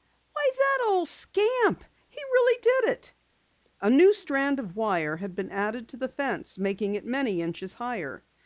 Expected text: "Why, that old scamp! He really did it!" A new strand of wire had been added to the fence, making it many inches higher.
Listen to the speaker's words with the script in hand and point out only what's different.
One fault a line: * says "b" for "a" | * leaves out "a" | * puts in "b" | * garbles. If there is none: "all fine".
all fine